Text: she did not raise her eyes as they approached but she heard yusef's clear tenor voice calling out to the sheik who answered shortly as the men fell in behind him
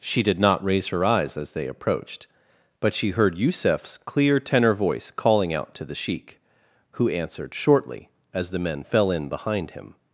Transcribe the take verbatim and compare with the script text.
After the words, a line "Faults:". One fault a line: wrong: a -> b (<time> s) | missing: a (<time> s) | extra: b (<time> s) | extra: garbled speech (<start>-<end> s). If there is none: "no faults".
she did not raise her eyes as they approached but she heard yusef's clear tenor voice calling out to the sheik who answered shortly as the men fell in behind him
Faults:
no faults